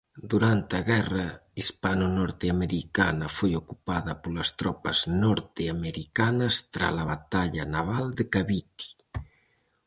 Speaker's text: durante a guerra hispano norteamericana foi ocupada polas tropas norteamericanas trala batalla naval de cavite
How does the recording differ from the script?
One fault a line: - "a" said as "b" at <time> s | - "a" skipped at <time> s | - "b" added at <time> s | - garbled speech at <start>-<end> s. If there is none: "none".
none